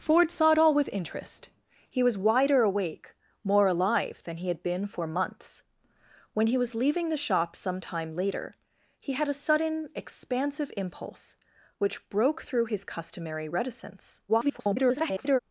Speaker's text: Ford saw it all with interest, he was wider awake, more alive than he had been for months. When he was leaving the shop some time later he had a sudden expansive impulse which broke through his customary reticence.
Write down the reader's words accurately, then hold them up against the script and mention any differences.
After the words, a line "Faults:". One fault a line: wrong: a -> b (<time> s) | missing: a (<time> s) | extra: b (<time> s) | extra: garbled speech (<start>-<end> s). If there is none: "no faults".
Ford saw it all with interest, he was wider awake, more alive than he had been for months. When he was leaving the shop some time later he had a sudden expansive impulse which broke through his customary reticence. [garbled]
Faults:
extra: garbled speech (14.3-15.4 s)